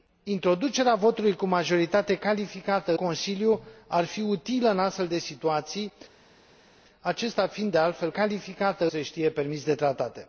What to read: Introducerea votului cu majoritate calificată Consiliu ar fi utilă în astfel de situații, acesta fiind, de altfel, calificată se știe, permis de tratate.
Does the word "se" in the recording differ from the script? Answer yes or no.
no